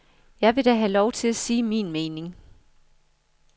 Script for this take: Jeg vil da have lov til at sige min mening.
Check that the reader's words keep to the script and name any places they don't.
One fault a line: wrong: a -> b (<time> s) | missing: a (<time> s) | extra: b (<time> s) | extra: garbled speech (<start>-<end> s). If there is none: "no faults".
no faults